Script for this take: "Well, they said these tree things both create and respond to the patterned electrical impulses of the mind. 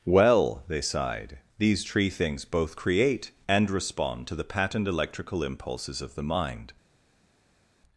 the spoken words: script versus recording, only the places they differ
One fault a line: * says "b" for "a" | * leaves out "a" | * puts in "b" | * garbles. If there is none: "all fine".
* says "sighed" for "said"